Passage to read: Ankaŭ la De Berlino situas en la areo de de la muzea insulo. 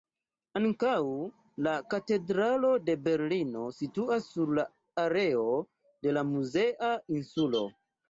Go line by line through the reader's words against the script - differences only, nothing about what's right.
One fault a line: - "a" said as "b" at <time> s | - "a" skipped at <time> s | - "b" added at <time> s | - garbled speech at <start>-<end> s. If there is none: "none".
- "Katedralo" added at 1.9 s
- "en" said as "sur" at 4.3 s
- "de" skipped at 6.2 s